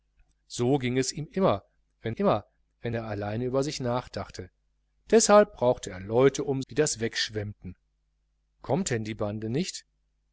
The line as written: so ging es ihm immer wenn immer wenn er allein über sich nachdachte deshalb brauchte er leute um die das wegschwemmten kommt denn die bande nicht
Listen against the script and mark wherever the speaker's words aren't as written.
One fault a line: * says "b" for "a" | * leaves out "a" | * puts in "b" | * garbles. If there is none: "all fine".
all fine